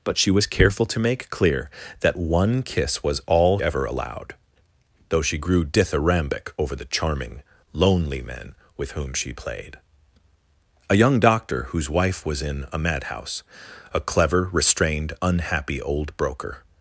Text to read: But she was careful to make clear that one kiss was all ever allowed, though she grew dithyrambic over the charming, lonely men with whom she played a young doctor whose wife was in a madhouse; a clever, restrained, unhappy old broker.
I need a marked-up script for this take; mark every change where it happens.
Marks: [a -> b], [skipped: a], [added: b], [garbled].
But she was careful to make clear that one kiss was all ever allowed, though she grew dithyrambic over the charming, lonely men with whom she played a young doctor whose wife was in a madhouse; a clever, restrained, unhappy old broker.